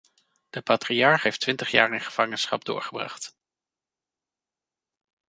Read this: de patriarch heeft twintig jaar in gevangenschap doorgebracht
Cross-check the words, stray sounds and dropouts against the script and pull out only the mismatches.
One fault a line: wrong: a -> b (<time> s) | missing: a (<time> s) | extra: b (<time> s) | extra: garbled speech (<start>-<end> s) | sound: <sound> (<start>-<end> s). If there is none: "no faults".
no faults